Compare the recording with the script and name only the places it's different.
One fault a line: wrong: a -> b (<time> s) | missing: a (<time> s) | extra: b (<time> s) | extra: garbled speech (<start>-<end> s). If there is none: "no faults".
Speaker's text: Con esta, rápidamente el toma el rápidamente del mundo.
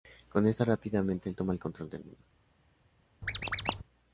wrong: rápidamente -> control (1.6 s)